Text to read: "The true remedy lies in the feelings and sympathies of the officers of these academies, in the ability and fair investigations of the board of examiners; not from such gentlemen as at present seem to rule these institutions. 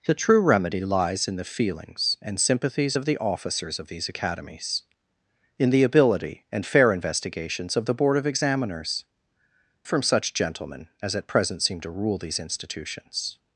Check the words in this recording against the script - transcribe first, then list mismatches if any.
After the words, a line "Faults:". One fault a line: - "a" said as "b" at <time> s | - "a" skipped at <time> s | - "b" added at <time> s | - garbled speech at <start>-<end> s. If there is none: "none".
"The true remedy lies in the feelings and sympathies of the officers of these academies, in the ability and fair investigations of the board of examiners; from such gentlemen as at present seem to rule these institutions.
Faults:
- "not" skipped at 9.1 s